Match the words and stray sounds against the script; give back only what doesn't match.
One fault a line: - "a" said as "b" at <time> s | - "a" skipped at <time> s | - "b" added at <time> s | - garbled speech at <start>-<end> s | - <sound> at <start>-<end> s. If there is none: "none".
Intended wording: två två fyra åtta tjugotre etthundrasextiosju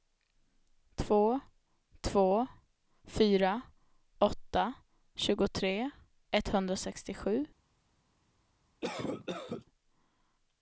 - cough at 8.8-9.7 s